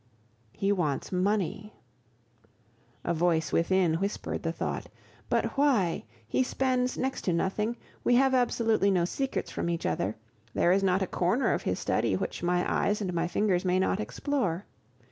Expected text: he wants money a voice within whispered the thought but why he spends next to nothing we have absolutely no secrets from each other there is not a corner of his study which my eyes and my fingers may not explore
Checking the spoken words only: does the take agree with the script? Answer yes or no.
yes